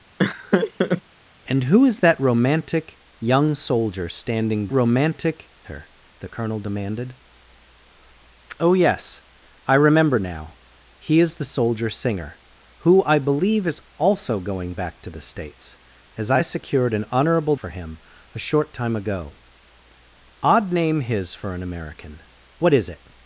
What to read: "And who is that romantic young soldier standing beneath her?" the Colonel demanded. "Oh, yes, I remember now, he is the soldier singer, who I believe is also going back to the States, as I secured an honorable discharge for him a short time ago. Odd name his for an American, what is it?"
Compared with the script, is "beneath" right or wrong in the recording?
wrong